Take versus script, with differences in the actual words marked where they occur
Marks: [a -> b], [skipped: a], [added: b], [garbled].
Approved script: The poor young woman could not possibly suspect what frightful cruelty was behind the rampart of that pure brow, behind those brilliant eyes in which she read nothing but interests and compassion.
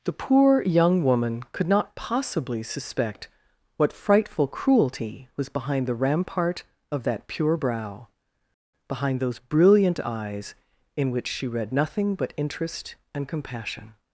The poor young woman could not possibly suspect what frightful cruelty was behind the rampart of that pure brow, behind those brilliant eyes in which she read nothing but [interests -> interest] and compassion.